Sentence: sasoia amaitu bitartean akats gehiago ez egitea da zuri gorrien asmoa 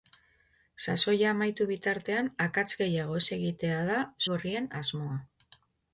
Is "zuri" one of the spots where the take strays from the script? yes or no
yes